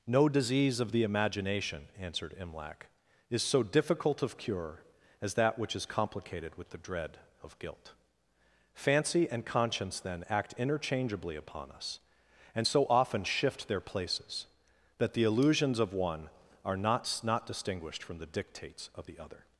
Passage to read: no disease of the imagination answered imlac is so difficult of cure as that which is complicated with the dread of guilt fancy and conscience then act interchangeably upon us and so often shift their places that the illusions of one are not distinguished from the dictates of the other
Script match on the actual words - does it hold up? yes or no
no